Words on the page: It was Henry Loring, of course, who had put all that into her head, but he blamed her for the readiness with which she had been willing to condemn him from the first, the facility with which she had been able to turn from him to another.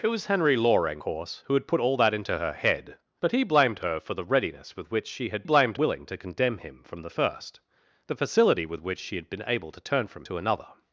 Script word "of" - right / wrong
wrong